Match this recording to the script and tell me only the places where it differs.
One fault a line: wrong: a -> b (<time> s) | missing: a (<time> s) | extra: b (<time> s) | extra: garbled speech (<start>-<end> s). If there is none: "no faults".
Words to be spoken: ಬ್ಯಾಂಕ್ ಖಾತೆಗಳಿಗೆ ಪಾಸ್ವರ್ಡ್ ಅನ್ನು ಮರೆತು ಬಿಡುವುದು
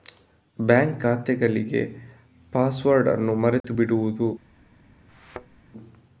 no faults